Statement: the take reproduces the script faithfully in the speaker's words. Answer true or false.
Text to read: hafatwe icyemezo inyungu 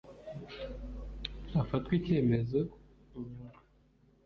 true